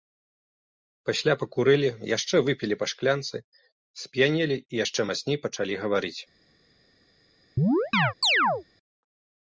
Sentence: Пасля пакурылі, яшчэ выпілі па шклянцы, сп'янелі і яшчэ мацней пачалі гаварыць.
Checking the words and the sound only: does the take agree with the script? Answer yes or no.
no